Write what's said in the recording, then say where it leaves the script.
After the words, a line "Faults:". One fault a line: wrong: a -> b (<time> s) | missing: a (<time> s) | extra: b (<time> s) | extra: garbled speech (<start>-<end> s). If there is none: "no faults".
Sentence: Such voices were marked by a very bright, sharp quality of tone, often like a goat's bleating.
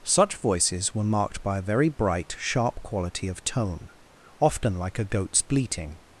Such voices were marked by a very bright, sharp quality of tone, often like a goat's bleating.
Faults:
no faults